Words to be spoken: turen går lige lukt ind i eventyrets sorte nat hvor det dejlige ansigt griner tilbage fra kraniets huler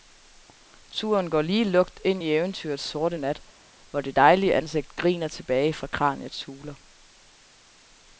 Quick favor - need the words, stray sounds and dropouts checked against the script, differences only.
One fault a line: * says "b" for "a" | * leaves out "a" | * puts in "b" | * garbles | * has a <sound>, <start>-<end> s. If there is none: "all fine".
all fine